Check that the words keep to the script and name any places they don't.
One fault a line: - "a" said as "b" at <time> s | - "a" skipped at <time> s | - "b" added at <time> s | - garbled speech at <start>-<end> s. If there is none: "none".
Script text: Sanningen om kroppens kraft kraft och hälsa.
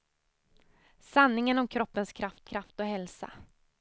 none